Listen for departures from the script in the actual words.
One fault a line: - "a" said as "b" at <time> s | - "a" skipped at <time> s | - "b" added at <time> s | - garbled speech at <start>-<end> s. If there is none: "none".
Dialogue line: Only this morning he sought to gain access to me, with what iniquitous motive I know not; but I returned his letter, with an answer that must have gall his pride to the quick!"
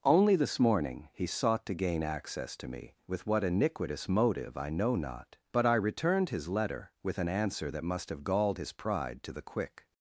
- "gall" said as "galled" at 8.2 s